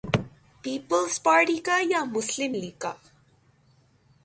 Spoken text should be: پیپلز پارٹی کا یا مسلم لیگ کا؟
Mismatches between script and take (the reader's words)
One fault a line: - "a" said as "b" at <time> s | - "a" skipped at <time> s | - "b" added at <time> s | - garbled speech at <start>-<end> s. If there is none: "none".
none